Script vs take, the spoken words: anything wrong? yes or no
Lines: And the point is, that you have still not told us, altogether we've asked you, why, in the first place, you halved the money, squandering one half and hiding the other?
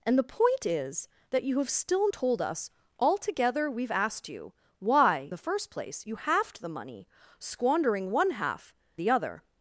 yes